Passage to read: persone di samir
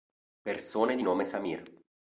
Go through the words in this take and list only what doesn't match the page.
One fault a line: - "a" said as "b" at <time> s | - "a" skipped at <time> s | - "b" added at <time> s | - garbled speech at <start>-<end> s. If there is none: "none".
- "nome" added at 1.0 s